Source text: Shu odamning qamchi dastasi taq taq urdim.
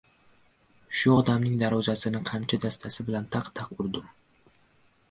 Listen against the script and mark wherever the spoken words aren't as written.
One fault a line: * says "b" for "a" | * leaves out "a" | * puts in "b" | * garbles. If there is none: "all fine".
* puts in "darvozasini"
* puts in "bilan"